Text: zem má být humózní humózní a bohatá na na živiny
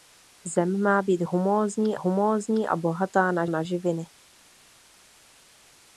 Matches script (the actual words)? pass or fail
pass